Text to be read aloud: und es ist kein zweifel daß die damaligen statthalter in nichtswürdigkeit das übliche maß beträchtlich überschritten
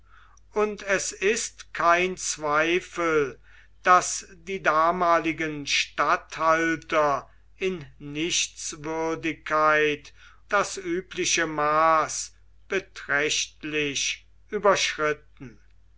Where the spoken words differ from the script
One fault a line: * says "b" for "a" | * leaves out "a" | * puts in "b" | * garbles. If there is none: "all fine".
all fine